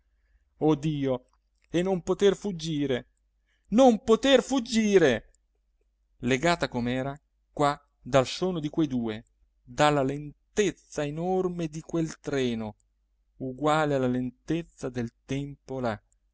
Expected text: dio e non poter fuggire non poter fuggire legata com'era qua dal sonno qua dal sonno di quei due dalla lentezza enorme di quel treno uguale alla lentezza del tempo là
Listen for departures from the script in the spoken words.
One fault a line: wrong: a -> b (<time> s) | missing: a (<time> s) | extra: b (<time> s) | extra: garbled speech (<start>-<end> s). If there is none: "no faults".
missing: qua dal sonno (8.6 s)